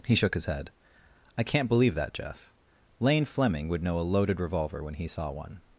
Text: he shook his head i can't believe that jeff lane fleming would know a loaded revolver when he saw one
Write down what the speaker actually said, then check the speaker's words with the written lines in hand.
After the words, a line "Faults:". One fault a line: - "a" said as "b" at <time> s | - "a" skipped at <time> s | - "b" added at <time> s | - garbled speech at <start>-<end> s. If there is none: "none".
he shook his head i can't believe that jeff lane fleming would know a loaded revolver when he saw one
Faults:
none